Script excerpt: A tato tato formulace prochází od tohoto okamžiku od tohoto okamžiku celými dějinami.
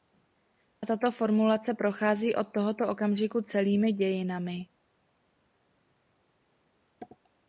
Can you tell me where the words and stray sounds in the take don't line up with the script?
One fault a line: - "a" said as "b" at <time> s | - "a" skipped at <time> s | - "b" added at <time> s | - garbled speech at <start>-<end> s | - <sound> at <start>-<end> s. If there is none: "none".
- "tato" skipped at 1.1 s
- "od tohoto okamžiku" skipped at 3.4 s